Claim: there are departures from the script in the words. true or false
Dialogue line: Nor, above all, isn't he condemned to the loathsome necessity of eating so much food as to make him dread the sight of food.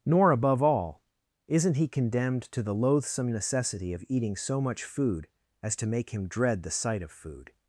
false